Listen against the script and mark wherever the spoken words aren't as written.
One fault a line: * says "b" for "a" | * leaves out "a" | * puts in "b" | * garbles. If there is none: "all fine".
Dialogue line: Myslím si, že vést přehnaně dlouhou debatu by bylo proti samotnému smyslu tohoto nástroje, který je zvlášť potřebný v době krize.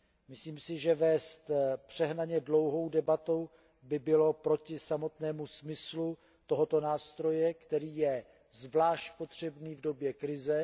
all fine